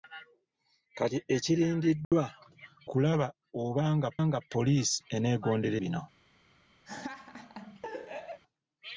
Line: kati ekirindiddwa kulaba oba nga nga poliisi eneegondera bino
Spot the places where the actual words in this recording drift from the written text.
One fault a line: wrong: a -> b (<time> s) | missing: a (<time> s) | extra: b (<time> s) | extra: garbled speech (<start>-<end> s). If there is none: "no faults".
no faults